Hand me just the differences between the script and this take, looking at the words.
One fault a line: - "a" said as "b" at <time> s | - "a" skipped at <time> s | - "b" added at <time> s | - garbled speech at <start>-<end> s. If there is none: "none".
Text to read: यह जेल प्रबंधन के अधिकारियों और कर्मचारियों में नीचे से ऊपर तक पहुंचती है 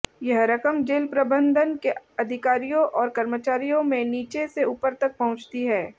- "रकम" added at 0.5 s